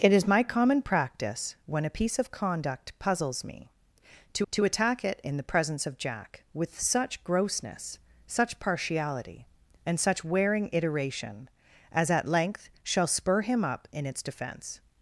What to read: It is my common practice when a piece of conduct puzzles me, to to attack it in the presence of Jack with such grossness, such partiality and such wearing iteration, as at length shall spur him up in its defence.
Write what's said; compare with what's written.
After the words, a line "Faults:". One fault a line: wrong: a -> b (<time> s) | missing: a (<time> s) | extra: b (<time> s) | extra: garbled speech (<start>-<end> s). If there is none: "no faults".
It is my common practice when a piece of conduct puzzles me, to to attack it in the presence of Jack with such grossness, such partiality and such wearing iteration, as at length shall spur him up in its defence.
Faults:
no faults